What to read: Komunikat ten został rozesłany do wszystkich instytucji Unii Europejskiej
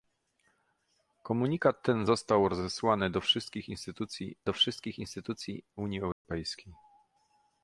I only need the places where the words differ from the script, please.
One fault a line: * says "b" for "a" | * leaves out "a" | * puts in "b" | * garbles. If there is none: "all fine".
* puts in "do wszystkich instytucji"